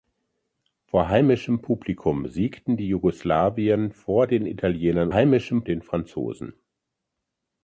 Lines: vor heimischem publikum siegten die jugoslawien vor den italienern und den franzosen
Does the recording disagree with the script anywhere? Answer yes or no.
yes